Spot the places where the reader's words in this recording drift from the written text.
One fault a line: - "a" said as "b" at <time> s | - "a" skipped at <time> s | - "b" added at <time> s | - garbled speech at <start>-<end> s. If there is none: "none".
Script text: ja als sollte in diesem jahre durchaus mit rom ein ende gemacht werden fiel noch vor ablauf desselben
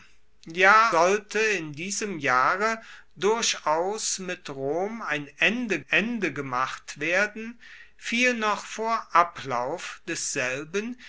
- "als" skipped at 0.9 s
- "ende" added at 5.9 s